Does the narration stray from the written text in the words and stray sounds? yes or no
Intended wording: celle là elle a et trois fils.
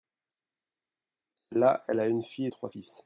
yes